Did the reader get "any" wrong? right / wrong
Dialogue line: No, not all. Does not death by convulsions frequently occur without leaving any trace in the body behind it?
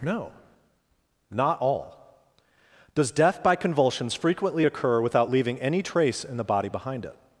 right